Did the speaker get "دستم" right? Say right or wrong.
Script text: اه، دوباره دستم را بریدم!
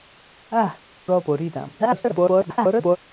wrong